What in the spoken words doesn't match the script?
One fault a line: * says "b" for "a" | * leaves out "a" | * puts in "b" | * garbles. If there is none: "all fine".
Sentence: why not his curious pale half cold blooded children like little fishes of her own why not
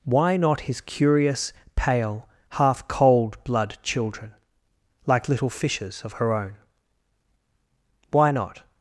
* says "blood" for "blooded"